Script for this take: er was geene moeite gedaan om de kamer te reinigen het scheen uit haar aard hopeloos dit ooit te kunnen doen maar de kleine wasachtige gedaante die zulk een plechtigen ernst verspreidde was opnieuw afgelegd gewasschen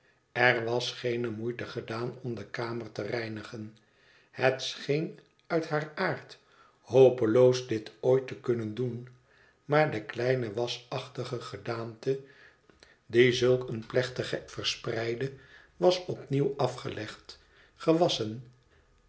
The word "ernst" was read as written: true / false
false